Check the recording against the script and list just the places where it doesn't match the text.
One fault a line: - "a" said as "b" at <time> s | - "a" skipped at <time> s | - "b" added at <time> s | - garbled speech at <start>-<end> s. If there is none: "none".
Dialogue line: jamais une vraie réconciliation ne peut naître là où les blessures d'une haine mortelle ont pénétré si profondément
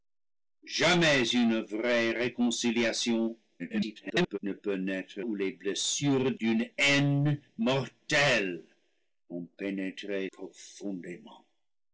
- garbled speech at 3.6-4.4 s
- "là" skipped at 5.2 s
- "si" skipped at 10.3 s